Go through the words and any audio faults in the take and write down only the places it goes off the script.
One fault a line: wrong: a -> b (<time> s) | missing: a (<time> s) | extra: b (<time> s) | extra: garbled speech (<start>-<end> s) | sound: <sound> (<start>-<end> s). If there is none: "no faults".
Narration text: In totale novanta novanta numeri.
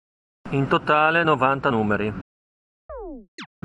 missing: novanta (1.7 s)
sound: chirp (2.9-3.5 s)